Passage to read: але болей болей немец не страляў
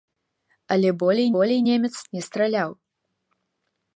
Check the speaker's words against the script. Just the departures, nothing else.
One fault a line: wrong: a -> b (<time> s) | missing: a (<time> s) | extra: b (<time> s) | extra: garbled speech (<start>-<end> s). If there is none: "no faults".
no faults